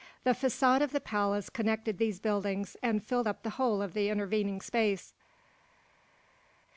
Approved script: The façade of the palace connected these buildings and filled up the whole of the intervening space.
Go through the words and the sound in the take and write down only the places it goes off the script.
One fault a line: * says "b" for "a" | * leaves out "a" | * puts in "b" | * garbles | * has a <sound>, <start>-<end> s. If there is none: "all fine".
all fine